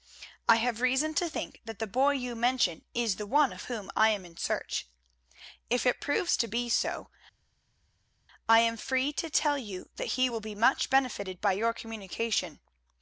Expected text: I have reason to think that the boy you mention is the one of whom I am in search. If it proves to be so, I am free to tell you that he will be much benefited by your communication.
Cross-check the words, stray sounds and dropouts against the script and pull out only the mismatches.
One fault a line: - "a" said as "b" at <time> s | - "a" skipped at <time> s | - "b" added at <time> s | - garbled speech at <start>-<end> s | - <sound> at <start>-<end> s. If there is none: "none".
none